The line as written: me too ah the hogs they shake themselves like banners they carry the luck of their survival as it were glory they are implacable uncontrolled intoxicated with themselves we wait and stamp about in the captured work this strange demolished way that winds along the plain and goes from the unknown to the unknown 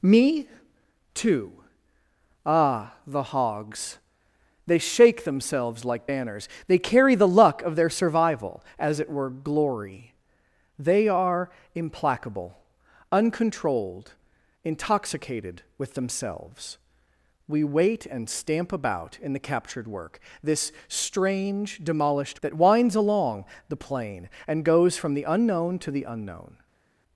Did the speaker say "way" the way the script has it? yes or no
no